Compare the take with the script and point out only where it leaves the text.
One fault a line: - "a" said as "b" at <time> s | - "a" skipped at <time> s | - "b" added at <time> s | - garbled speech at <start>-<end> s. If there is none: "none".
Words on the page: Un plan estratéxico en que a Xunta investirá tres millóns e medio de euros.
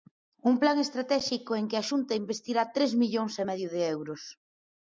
none